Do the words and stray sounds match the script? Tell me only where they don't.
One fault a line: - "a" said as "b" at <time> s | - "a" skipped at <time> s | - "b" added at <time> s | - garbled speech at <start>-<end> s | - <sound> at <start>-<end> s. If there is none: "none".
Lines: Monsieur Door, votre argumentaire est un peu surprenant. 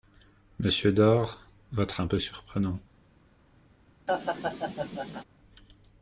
- "argumentaire est" skipped at 2.0 s
- laugh at 4.1-5.2 s